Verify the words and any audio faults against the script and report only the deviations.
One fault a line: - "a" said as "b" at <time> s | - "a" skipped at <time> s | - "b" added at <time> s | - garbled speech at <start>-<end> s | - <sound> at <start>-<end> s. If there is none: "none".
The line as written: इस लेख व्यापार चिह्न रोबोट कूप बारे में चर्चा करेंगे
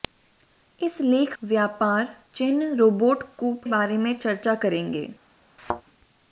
- thud at 5.6-5.8 s